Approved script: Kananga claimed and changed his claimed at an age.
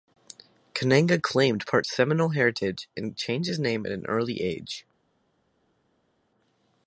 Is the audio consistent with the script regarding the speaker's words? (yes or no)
no